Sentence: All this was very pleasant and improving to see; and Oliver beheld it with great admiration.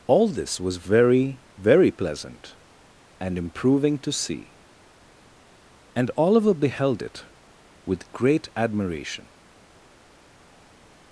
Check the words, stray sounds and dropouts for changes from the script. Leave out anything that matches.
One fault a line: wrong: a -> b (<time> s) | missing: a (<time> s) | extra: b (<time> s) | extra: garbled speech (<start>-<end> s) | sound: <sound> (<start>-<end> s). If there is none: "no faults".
extra: very (1.6 s)